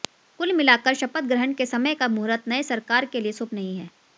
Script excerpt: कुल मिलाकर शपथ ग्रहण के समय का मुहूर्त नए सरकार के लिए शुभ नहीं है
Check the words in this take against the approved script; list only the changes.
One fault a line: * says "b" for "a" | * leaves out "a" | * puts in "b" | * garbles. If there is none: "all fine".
all fine